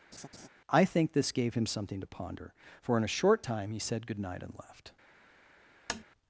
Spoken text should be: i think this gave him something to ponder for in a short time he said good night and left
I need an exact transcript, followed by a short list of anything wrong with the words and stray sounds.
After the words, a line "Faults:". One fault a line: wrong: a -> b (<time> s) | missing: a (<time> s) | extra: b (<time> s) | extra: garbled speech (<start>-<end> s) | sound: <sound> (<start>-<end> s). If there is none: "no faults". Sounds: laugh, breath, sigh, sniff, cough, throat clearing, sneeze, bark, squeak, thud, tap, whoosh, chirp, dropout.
i think this gave him something to ponder for in a short time he said good night and left
Faults:
sound: laugh (0.1-0.5 s)
sound: tap (5.9-6.0 s)